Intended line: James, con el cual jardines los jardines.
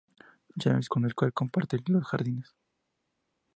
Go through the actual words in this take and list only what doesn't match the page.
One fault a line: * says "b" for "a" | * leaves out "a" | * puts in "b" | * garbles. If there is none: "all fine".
* says "comparte" for "jardines"